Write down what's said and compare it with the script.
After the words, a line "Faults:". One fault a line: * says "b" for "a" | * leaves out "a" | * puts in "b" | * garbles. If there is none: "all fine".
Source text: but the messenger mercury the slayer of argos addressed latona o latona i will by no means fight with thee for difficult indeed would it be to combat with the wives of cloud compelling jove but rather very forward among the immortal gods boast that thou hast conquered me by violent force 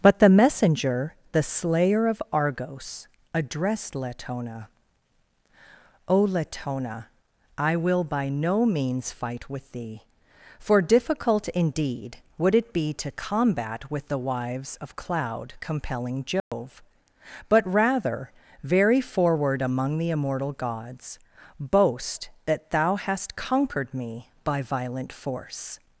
but the messenger the slayer of argos addressed latona o latona i will by no means fight with thee for difficult indeed would it be to combat with the wives of cloud compelling jove but rather very forward among the immortal gods boast that thou hast conquered me by violent force
Faults:
* leaves out "mercury"